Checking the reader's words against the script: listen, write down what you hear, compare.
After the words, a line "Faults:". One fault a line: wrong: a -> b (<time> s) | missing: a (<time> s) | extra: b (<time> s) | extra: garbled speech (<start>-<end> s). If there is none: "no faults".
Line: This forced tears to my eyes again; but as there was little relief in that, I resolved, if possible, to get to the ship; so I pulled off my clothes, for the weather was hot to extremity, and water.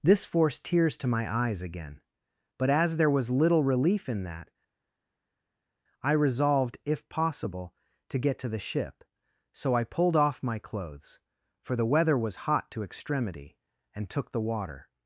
This forced tears to my eyes again; but as there was little relief in that, I resolved, if possible, to get to the ship; so I pulled off my clothes, for the weather was hot to extremity, and took the water.
Faults:
extra: took the (14.1 s)